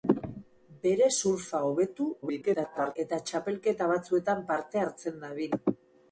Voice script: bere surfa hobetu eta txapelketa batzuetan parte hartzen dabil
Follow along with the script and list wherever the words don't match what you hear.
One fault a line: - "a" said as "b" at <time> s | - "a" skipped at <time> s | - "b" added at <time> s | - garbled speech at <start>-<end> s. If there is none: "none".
- garbled speech at 2.2-3.0 s